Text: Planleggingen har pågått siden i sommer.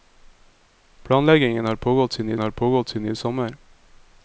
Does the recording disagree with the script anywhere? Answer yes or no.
yes